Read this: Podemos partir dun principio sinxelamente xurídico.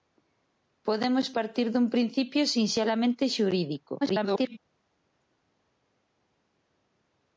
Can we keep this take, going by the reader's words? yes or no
no